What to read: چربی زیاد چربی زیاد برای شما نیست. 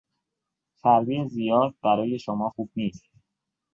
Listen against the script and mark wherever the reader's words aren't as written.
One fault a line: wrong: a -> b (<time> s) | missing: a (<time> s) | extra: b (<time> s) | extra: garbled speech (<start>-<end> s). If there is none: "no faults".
missing: چربی زیاد (1.8 s)
extra: خوب (2.5 s)